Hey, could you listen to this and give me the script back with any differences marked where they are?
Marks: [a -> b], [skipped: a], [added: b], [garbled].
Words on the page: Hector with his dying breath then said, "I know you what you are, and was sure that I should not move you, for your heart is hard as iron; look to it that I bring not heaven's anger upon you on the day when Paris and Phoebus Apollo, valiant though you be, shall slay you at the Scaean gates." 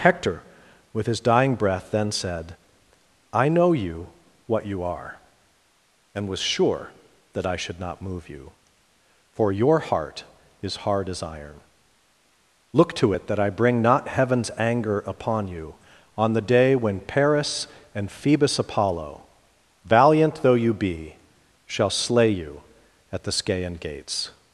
Hector with his dying breath then said, "I know you what you are, and was sure that I should not move you, for your heart is hard as iron; look to it that I bring not heaven's anger upon you on the day when Paris and Phoebus Apollo, valiant though you be, shall slay you at the Scaean gates."